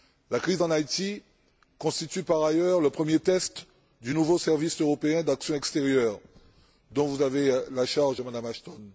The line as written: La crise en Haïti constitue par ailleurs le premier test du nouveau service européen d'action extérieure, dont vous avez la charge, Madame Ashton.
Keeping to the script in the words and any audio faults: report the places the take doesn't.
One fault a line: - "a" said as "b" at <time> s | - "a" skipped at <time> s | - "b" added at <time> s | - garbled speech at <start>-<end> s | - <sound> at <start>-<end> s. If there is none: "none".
none